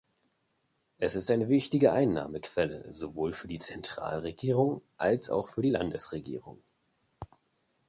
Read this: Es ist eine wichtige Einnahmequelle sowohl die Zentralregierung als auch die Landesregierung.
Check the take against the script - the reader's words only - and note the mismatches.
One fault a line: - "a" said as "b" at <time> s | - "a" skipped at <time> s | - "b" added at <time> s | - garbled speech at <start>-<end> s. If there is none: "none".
- "für" added at 3.3 s
- "für" added at 5.5 s